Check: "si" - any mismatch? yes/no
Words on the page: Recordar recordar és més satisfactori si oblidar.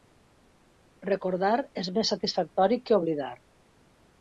yes